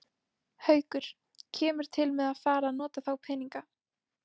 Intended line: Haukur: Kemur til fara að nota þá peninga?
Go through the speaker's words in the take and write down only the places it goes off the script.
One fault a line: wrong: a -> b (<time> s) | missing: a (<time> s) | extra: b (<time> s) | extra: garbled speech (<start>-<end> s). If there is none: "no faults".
extra: með að (2.2 s)